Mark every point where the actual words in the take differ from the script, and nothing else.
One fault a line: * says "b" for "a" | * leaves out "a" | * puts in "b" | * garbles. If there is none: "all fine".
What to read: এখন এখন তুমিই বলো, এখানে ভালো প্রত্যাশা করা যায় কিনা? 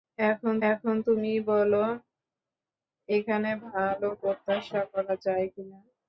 all fine